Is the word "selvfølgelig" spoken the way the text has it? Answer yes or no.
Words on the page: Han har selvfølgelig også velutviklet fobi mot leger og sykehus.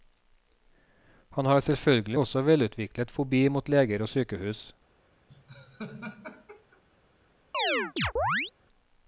yes